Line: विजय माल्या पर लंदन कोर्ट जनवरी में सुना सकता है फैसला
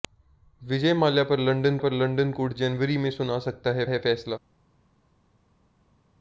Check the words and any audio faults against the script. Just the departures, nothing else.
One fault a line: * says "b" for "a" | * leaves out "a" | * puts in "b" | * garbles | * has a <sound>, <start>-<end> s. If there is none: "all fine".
* puts in "पर लंदन"
* puts in "है"